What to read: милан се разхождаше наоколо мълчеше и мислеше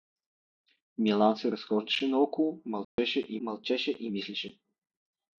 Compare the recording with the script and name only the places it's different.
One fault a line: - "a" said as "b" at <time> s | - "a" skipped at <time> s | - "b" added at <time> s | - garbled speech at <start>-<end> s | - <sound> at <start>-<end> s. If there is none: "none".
- dropout at 2.8-3.0 s
- "мълчеше и" added at 3.4 s